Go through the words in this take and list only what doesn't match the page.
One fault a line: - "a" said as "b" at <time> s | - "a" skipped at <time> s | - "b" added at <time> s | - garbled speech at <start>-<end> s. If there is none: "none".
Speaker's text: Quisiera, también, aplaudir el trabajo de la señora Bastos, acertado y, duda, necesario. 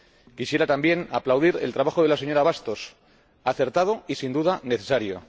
- "sin" added at 4.2 s